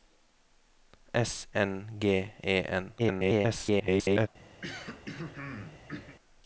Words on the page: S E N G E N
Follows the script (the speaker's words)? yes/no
no